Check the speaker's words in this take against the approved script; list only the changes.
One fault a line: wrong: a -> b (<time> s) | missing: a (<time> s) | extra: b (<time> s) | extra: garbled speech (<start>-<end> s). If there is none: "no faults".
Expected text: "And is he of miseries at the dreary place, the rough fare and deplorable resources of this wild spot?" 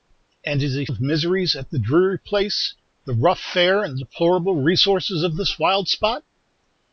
no faults